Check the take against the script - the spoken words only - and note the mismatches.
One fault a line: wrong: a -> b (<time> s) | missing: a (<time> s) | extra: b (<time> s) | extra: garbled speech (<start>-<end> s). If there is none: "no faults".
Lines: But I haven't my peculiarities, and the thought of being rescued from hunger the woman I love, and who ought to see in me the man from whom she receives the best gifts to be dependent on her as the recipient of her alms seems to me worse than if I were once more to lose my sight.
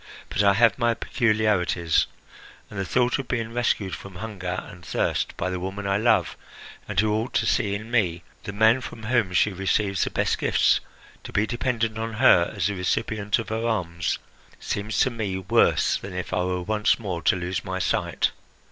wrong: haven't -> have (0.6 s)
extra: and thirst by (4.7 s)